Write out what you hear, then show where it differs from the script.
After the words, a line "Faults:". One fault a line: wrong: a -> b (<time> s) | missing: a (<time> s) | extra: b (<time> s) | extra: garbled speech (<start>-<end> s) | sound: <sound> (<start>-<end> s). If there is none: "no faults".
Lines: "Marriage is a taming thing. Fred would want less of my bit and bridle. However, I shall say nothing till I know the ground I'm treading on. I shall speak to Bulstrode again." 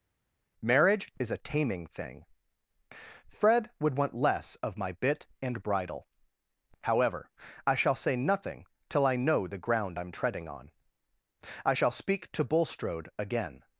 "Marriage is a taming thing. Fred would want less of my bit and bridle. However, I shall say nothing till I know the ground I'm treading on. I shall speak to Bulstrode again."
Faults:
no faults